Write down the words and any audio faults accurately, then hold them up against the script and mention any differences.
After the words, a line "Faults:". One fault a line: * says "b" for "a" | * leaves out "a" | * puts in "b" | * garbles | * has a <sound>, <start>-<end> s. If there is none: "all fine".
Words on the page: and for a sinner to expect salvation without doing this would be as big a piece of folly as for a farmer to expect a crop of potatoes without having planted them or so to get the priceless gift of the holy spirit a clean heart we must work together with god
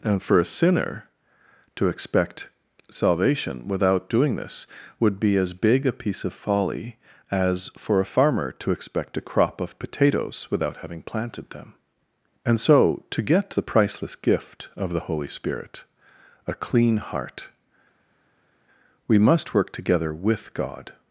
and for a sinner to expect salvation without doing this would be as big a piece of folly as for a farmer to expect a crop of potatoes without having planted them and so to get the priceless gift of the holy spirit a clean heart we must work together with god
Faults:
* says "and" for "or"